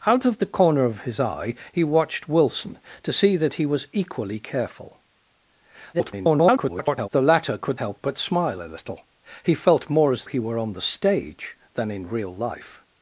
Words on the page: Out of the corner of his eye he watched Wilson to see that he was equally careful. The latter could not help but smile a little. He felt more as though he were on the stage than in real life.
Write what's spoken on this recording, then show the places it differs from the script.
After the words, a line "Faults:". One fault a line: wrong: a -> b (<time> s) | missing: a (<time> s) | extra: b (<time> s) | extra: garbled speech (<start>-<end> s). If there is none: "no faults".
Out of the corner of his eye he watched Wilson to see that he was equally careful. [garbled] The latter could help but smile a little. He felt more as he were on the stage than in real life.
Faults:
extra: garbled speech (5.9-7.1 s)
missing: not (7.8 s)
missing: though (10.2 s)